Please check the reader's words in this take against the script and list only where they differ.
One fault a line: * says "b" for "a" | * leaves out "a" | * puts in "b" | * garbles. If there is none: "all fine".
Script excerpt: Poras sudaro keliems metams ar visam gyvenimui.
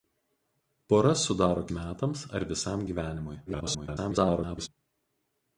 * leaves out "keliems"
* garbles